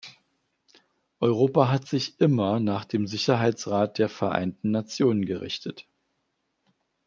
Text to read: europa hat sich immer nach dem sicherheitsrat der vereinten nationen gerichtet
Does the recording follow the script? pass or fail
pass